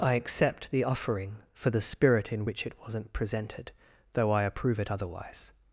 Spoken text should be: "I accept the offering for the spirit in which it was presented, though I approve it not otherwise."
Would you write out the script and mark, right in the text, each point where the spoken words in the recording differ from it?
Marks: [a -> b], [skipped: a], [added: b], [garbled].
"I accept the offering for the spirit in which it [was -> wasn't] presented, though I approve it [skipped: not] otherwise."